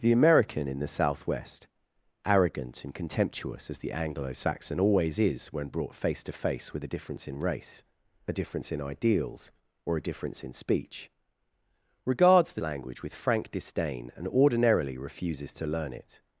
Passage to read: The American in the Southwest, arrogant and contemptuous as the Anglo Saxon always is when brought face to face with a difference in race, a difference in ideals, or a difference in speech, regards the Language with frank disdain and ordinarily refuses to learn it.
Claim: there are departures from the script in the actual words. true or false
false